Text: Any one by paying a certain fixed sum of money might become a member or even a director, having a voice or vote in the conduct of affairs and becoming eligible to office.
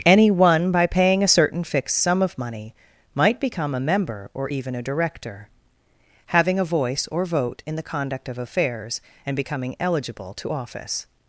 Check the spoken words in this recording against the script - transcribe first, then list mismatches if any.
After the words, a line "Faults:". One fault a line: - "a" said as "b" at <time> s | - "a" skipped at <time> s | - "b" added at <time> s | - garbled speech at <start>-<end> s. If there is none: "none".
Any one by paying a certain fixed sum of money might become a member or even a director, having a voice or vote in the conduct of affairs and becoming eligible to office.
Faults:
none